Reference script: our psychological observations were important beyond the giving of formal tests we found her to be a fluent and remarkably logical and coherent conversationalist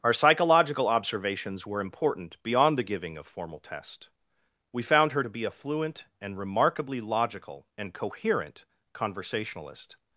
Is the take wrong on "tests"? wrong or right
wrong